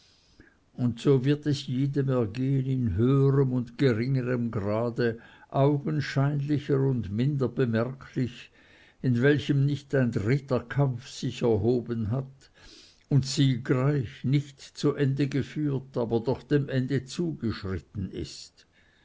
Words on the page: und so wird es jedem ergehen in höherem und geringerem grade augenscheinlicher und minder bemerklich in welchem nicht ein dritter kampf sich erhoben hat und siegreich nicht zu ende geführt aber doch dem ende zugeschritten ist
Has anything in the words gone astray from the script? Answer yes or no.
no